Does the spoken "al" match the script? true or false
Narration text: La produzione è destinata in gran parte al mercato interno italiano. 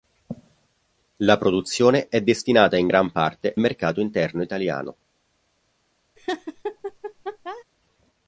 false